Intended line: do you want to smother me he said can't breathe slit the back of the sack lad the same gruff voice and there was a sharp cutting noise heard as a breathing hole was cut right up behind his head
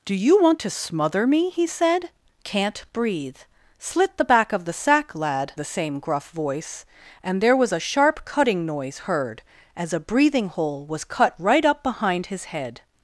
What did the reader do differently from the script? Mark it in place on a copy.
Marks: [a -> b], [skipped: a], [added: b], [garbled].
do you want to smother me he said can't breathe slit the back of the sack lad the same gruff voice and there was a sharp cutting noise heard as a breathing hole was cut right up behind his head